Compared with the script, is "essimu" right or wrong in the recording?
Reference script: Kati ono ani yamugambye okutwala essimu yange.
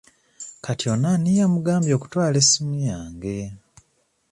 right